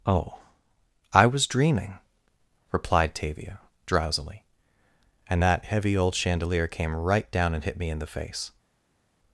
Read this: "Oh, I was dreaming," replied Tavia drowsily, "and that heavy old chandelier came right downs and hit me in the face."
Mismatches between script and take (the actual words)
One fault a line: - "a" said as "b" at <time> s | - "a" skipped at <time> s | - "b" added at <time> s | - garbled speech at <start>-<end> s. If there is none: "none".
- "downs" said as "down" at 7.3 s